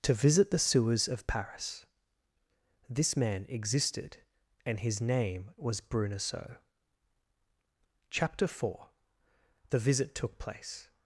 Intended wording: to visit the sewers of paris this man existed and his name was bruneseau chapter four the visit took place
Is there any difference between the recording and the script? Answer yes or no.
no